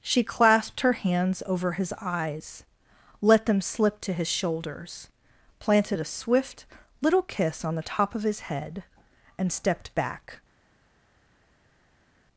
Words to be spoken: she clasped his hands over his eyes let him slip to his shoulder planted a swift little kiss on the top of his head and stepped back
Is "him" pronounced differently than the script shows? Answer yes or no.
yes